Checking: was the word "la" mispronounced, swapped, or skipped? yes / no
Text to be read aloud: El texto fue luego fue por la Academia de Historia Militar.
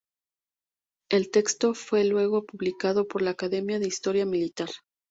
no